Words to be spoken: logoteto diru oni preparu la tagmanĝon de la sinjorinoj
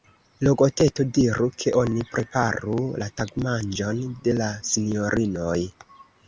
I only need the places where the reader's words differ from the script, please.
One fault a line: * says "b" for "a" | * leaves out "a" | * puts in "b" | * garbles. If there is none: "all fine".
* puts in "ke"